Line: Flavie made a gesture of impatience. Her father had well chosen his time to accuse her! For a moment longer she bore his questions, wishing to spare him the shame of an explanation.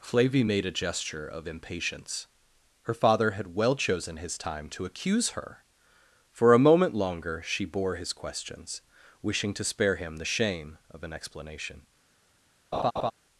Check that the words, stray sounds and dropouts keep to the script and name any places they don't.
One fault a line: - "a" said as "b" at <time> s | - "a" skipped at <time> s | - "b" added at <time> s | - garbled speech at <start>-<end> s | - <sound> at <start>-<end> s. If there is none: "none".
- laugh at 12.7-13.1 s